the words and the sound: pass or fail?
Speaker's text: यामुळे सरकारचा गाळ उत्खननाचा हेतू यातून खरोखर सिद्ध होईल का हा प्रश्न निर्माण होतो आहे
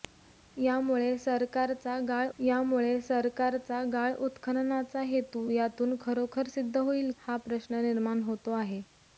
fail